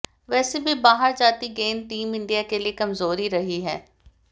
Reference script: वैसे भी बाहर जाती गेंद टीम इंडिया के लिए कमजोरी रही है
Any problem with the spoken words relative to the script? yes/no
no